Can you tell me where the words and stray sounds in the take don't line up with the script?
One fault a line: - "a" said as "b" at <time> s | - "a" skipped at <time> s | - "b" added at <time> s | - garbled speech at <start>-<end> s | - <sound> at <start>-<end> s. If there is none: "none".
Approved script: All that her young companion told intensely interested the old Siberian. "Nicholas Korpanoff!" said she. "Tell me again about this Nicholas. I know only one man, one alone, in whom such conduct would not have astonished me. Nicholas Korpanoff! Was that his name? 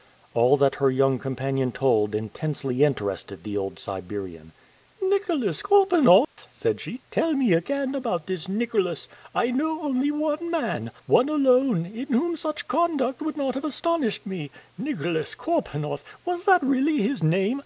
- dropout at 6.2-6.4 s
- "really" added at 16.6 s